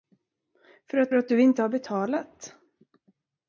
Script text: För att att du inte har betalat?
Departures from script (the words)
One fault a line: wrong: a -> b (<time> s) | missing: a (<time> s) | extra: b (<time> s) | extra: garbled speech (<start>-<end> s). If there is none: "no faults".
no faults